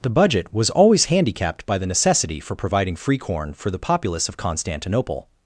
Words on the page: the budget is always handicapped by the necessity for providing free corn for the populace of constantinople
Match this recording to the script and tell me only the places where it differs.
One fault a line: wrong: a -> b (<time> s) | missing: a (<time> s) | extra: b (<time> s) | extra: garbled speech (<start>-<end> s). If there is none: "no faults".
wrong: is -> was (0.5 s)